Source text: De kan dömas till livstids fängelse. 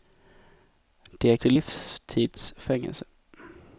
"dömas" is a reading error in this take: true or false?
true